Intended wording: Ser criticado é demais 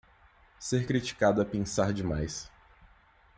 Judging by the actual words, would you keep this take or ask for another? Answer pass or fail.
fail